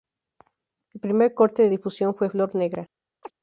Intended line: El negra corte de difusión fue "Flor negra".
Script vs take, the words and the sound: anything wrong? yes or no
yes